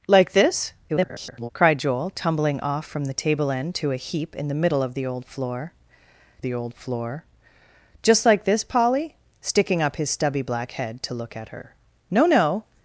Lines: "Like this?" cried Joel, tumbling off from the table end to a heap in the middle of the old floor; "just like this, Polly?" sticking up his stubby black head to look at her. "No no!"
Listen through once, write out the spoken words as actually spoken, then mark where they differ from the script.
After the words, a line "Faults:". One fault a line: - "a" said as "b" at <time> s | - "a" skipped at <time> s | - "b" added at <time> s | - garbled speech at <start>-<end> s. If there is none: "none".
"Like this?" [garbled] cried Joel, tumbling off from the table end to a heap in the middle of the old floor the old floor; "just like this, Polly?" sticking up his stubby black head to look at her. "No no!"
Faults:
- garbled speech at 0.9-1.5 s
- "the old floor" added at 6.4 s